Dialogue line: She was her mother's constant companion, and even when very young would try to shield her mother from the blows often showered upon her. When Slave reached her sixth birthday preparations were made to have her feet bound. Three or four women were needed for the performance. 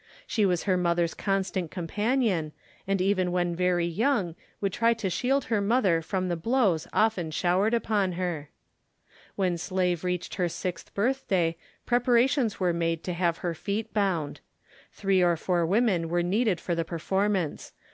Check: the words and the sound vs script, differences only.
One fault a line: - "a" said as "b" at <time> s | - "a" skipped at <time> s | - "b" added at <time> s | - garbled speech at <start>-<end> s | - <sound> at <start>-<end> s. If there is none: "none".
none